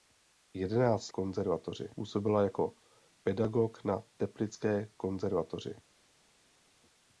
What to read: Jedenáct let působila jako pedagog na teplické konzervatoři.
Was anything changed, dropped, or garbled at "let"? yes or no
yes